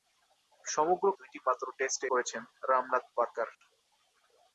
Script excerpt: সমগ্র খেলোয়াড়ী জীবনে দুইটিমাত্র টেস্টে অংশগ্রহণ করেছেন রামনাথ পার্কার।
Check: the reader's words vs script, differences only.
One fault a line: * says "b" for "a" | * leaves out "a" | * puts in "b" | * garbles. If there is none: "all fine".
* leaves out "খেলোয়াড়ী জীবনে"
* leaves out "অংশগ্রহণ"